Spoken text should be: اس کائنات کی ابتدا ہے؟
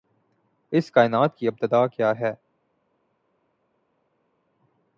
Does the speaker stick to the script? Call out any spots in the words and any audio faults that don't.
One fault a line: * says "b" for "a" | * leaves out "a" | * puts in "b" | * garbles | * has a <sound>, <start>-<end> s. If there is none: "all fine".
* puts in "کیا"